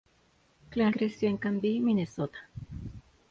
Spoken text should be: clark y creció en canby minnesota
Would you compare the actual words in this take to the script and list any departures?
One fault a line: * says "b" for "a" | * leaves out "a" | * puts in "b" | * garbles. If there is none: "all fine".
all fine